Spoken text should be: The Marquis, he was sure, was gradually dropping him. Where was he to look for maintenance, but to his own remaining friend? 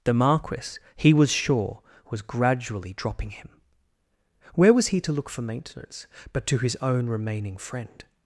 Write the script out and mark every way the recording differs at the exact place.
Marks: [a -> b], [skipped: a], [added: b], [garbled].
The Marquis, he was sure, was gradually dropping him. Where was he to look for maintenance, but to his own remaining friend?